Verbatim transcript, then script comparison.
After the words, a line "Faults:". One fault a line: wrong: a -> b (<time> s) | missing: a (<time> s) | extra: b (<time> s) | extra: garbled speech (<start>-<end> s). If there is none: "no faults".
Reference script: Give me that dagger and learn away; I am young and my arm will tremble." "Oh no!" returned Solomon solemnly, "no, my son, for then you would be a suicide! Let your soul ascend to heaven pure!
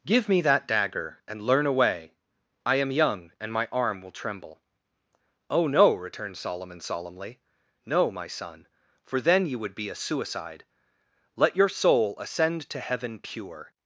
Give me that dagger and learn away; I am young and my arm will tremble." "Oh no!" returned Solomon solemnly, "no, my son, for then you would be a suicide! Let your soul ascend to heaven pure!
Faults:
no faults